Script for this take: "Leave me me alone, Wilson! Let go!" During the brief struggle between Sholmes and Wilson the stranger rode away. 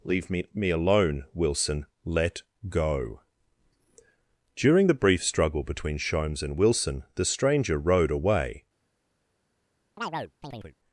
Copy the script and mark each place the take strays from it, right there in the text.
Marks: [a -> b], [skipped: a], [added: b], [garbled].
"Leave me me alone, Wilson! Let go!" During the brief struggle between Sholmes and Wilson the stranger rode away.